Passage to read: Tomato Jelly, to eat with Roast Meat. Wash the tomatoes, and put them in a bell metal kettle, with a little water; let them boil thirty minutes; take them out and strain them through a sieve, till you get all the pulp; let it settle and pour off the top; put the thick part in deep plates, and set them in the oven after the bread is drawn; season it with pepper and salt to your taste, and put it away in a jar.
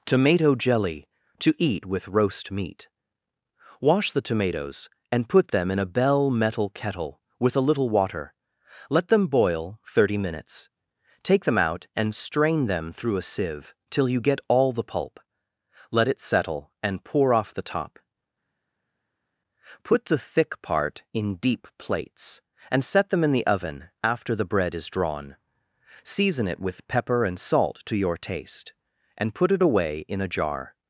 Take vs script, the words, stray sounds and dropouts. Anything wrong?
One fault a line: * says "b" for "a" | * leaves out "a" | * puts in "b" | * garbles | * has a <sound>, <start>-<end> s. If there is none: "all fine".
all fine